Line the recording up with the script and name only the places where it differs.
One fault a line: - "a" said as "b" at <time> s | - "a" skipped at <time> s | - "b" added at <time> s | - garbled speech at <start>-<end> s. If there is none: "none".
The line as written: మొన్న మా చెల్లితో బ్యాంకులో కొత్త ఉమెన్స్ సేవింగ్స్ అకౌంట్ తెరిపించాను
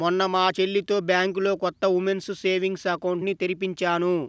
- "ని" added at 3.2 s